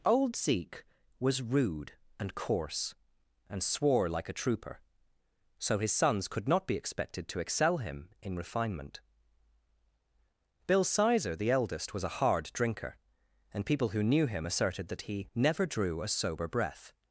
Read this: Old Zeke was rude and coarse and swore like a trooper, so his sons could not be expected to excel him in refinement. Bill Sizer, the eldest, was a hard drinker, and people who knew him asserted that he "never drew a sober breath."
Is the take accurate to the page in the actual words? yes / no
yes